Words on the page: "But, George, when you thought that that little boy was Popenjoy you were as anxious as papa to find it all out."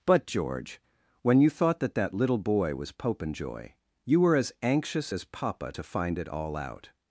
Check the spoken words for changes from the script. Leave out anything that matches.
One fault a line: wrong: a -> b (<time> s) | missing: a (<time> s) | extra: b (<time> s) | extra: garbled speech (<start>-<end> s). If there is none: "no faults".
no faults